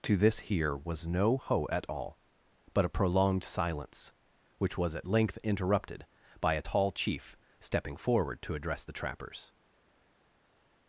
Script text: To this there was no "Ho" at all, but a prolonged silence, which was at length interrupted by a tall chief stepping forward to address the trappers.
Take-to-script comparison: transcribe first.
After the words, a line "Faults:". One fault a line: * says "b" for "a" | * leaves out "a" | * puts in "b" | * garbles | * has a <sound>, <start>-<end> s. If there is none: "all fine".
To this here was no "Ho" at all, but a prolonged silence, which was at length interrupted by a tall chief stepping forward to address the trappers.
Faults:
* says "here" for "there"